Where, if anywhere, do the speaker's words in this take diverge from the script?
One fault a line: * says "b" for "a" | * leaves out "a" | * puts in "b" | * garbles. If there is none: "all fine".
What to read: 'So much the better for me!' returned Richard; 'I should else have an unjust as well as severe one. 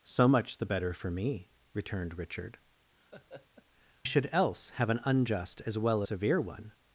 * leaves out "I"
* leaves out "as"